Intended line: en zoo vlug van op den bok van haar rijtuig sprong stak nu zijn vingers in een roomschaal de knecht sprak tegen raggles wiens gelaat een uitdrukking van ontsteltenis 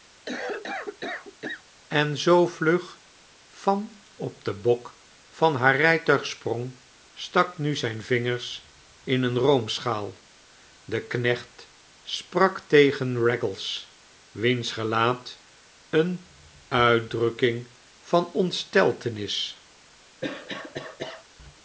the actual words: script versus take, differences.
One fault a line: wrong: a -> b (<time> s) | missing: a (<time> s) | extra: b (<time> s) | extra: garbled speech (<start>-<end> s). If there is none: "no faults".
no faults